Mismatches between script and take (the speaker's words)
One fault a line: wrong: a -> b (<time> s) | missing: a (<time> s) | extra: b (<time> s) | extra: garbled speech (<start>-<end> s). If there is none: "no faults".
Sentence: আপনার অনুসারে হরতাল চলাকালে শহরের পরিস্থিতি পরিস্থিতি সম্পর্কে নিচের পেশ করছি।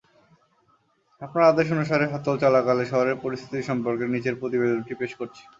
extra: আদেশ (1.5 s)
missing: পরিস্থিতি (3.6 s)
extra: প্রতিবেদনটি (4.4 s)